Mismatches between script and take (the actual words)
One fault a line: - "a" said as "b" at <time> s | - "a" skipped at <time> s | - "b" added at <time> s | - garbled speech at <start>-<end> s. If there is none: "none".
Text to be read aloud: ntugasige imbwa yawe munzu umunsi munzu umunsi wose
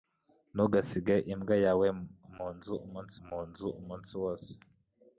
none